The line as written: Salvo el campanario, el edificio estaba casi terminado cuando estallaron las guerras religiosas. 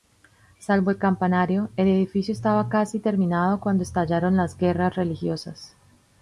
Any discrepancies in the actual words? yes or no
no